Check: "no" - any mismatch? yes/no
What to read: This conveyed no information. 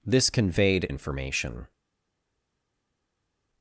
yes